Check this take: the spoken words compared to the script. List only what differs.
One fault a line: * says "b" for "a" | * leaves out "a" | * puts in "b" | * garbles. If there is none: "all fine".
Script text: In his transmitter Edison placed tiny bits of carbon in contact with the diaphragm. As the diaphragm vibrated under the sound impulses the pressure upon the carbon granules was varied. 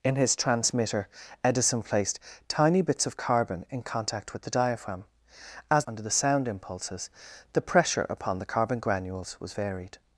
* leaves out "the diaphragm vibrated"